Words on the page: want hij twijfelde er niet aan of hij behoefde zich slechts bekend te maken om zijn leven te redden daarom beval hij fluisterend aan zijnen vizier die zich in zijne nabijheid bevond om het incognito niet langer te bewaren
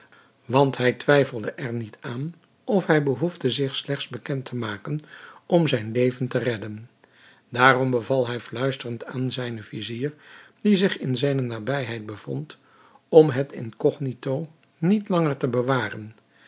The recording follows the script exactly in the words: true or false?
true